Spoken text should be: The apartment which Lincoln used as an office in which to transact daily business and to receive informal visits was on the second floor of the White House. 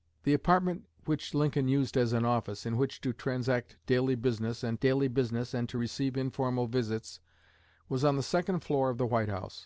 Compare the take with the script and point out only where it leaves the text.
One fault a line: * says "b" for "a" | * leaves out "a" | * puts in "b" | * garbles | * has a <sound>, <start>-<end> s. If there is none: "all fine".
* puts in "daily business and"